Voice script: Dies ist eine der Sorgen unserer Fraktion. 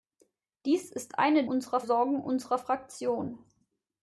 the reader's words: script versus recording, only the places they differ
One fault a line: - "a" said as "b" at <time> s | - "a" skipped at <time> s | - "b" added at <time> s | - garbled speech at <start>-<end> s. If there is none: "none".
- "der" said as "unserer" at 1.4 s